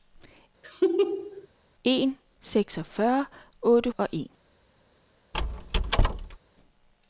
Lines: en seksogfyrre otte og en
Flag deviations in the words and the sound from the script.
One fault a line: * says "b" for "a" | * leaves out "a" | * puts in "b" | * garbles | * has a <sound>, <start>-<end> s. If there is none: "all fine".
* has a laugh, 0.6-1.5 s
* has a squeak, 5.3-6.4 s